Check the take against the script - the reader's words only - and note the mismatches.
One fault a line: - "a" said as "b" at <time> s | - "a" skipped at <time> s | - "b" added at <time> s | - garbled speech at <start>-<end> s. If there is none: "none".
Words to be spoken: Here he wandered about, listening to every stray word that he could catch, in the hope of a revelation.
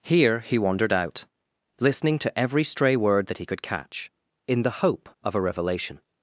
- "about" said as "out" at 0.9 s